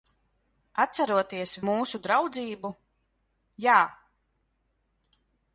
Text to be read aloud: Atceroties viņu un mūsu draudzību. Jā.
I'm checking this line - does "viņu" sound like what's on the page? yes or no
no